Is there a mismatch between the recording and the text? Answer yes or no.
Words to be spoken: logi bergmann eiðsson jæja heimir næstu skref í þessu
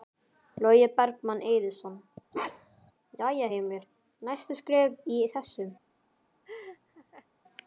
no